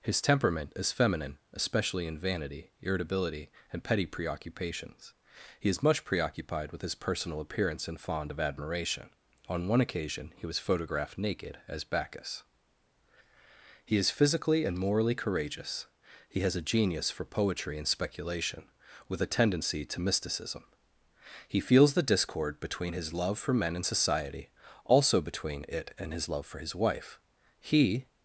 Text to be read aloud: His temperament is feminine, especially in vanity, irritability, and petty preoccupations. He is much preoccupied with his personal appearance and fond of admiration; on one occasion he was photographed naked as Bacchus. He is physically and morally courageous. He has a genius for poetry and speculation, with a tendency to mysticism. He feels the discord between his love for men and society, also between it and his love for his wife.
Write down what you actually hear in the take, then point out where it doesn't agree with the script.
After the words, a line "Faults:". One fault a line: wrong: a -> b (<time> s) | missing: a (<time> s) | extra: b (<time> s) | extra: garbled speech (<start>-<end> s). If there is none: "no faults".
His temperament is feminine, especially in vanity, irritability, and petty preoccupations. He is much preoccupied with his personal appearance and fond of admiration; on one occasion he was photographed naked as Bacchus. He is physically and morally courageous. He has a genius for poetry and speculation, with a tendency to mysticism. He feels the discord between his love for men and society, also between it and his love for his wife. He
Faults:
extra: He (27.6 s)